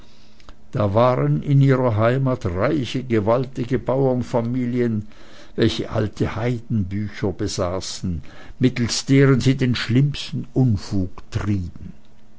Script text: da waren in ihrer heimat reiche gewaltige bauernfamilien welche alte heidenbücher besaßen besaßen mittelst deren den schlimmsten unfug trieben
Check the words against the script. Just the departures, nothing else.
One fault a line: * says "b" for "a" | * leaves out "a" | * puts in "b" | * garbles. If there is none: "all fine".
* leaves out "besaßen"
* puts in "sie"